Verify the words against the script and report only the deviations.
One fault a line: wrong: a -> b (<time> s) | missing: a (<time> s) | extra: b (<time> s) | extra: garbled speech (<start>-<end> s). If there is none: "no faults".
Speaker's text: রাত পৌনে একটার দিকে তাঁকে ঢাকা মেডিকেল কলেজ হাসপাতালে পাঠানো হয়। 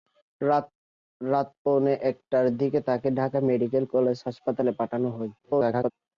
extra: garbled speech (5.4-5.9 s)